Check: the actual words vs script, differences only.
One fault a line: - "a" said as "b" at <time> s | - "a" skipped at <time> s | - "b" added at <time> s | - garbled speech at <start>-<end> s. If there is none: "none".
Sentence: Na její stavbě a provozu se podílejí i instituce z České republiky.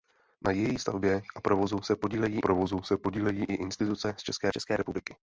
- "provozu se podílejí" added at 2.4 s
- "České" added at 4.5 s